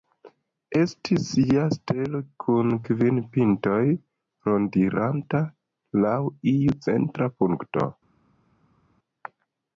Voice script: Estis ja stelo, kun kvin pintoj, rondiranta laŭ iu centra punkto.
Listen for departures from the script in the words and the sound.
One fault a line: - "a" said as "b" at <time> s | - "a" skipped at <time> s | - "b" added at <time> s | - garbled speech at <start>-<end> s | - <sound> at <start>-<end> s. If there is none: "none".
none